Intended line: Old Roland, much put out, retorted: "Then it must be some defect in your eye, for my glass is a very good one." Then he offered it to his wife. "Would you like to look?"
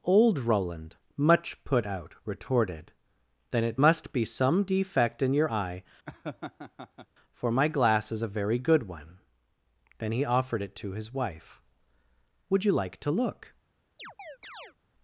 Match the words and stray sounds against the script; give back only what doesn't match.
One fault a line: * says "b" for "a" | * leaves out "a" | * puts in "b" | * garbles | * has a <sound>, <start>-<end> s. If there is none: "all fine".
* has a laugh, 6.1-7.1 s
* has a chirp, 14.0-14.7 s